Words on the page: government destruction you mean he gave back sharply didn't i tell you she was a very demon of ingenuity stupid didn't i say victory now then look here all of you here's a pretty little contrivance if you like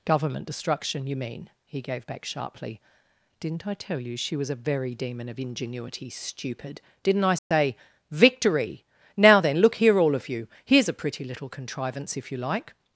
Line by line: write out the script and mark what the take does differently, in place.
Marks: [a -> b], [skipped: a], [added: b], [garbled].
government destruction you mean he gave back sharply didn't i tell you she was a very demon of ingenuity stupid didn't i say victory now then look here all of you here's a pretty little contrivance if you like